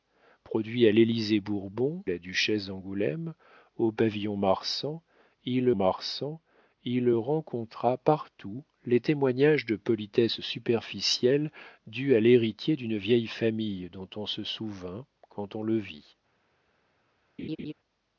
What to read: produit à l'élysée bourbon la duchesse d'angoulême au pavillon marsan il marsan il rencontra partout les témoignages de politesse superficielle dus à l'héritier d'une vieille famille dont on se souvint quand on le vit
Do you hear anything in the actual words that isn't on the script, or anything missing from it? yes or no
no